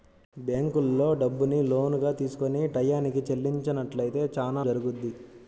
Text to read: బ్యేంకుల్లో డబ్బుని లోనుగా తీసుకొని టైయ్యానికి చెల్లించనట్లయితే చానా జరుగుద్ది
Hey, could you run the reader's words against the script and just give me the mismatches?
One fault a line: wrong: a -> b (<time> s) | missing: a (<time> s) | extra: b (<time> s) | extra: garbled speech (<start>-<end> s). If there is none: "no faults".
no faults